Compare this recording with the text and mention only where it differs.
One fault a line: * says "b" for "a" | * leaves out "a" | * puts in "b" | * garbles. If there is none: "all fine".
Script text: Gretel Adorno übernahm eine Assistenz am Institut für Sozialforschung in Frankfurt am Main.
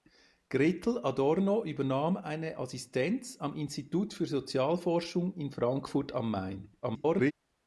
* garbles